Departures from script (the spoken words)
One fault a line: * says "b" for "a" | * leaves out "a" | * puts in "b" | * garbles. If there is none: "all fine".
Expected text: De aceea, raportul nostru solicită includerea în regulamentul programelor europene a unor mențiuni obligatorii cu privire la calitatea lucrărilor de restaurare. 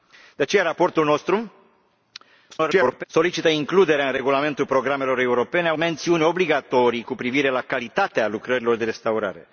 * garbles
* leaves out "unor"